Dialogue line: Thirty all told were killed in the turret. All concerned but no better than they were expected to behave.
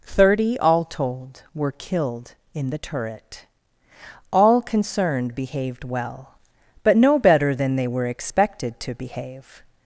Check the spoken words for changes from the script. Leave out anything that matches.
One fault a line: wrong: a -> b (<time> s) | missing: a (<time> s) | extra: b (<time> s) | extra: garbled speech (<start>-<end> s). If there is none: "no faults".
extra: behaved well (5.3 s)